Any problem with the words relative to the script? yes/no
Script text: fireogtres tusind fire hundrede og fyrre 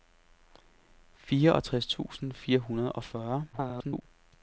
yes